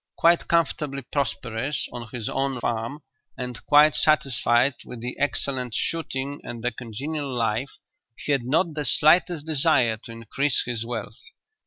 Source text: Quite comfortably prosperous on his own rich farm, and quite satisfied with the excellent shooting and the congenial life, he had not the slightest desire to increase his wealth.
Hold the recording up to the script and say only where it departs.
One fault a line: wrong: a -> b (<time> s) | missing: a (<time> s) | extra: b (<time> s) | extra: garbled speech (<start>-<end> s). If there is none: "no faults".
missing: rich (2.6 s)